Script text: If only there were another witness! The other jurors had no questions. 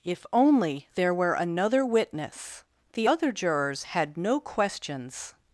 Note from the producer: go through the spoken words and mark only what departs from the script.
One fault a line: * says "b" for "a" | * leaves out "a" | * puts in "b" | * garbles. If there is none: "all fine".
all fine